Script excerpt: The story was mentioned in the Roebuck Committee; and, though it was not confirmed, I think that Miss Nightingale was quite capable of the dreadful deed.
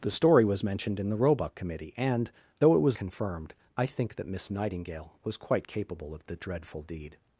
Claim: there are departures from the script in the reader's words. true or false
true